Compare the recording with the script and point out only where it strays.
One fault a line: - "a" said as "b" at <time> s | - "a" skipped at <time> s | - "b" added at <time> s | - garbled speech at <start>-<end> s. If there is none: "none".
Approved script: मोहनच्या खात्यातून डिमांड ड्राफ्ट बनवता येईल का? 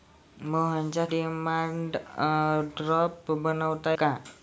- "खात्यातून" skipped at 1.1 s
- "येईल" skipped at 4.0 s